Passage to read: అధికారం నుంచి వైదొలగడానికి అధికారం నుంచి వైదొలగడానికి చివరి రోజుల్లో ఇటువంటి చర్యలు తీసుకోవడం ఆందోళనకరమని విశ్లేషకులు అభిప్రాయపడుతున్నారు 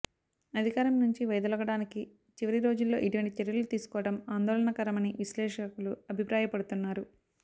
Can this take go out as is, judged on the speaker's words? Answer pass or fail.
fail